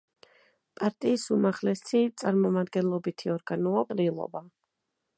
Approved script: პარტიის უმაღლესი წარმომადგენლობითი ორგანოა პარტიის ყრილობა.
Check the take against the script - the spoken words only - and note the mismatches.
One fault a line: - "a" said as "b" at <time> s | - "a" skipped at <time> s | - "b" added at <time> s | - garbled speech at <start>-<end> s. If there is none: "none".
- "პარტიის" skipped at 3.9 s